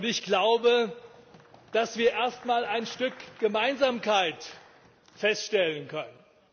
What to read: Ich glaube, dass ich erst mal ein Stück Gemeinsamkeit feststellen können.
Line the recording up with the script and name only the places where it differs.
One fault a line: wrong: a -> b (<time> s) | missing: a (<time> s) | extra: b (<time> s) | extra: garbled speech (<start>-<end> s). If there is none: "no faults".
wrong: ich -> wir (2.0 s)